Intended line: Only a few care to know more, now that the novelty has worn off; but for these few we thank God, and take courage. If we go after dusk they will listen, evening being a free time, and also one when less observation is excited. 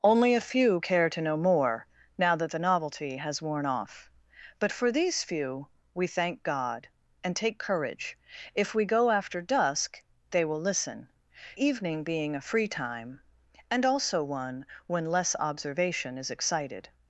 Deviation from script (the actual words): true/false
false